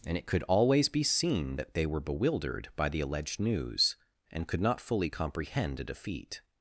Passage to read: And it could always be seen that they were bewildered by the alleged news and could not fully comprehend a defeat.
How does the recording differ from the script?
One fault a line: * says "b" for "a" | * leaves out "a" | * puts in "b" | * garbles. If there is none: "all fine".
all fine